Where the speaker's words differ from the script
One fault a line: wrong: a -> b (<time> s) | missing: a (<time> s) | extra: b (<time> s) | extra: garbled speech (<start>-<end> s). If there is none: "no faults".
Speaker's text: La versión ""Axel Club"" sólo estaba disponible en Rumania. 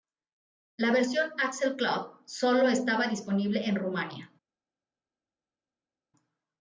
no faults